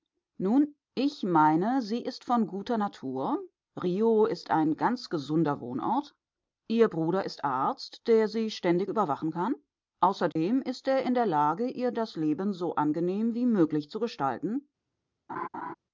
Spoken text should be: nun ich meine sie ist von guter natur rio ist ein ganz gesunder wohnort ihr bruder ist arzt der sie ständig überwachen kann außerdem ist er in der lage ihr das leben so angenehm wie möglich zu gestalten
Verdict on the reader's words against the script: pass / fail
pass